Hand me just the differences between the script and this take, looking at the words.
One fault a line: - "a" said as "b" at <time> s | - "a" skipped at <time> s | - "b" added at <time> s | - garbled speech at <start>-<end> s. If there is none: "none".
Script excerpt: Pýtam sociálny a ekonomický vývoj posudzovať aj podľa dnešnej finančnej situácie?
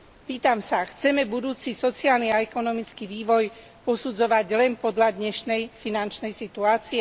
- "sa chceme budúci" added at 0.6 s
- "aj" said as "len" at 4.5 s